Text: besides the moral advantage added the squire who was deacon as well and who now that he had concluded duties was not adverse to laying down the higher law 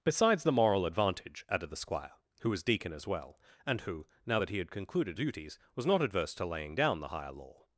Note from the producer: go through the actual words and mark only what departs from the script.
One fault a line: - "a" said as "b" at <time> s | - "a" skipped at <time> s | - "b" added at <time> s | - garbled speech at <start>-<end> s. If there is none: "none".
none